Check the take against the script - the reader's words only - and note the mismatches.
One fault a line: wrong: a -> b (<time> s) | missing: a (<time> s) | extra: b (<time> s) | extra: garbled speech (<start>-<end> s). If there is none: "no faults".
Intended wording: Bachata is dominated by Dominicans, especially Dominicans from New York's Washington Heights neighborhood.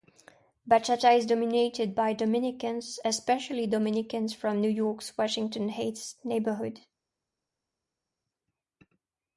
no faults